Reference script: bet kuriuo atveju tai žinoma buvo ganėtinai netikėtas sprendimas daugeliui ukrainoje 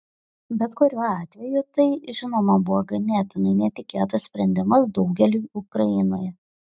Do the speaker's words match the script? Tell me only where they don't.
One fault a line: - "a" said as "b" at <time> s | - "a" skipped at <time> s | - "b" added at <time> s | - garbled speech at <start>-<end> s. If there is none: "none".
none